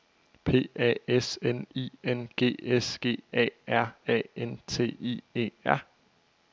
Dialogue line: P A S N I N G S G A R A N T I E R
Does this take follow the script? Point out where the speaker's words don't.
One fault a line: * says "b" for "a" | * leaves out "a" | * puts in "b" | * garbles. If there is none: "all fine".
all fine